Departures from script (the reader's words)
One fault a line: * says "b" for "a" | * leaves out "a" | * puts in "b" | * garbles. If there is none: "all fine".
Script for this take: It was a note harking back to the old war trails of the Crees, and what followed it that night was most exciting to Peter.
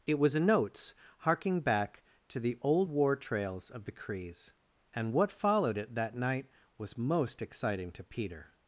* says "notes" for "note"